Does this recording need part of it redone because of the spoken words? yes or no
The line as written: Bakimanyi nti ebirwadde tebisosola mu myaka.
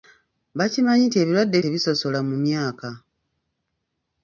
no